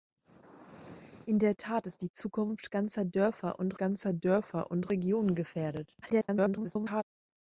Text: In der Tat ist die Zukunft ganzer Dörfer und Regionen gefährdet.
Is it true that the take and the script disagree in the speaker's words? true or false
true